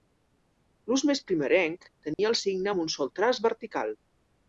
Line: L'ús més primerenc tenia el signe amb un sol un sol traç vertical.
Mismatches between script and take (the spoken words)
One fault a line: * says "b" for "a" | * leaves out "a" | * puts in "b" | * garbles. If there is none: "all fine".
* leaves out "un sol"